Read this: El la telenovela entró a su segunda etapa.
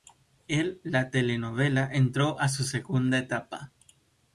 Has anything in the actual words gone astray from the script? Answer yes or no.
no